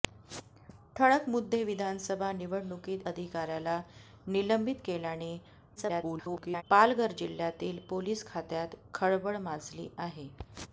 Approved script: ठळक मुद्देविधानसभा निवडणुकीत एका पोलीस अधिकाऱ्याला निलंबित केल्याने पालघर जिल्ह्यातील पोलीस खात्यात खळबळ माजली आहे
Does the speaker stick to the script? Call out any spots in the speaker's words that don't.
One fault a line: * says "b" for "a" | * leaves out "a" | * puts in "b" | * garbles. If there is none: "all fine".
* leaves out "एका पोलीस"
* garbles